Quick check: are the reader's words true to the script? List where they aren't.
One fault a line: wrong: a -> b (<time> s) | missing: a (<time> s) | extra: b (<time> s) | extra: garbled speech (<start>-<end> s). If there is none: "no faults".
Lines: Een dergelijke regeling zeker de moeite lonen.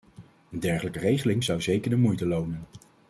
extra: zou (1.4 s)